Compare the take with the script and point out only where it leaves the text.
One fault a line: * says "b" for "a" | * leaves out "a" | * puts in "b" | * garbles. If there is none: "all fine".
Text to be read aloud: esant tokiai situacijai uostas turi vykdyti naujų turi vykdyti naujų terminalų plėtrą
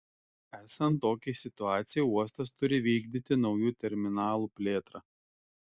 * leaves out "turi vykdyti naujų"